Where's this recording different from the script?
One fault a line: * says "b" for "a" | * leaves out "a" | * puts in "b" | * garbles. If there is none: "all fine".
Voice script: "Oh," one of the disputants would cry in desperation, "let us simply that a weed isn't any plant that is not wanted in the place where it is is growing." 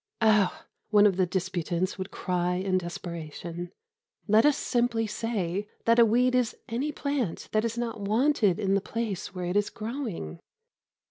* puts in "say"
* says "is" for "isn't"
* leaves out "is"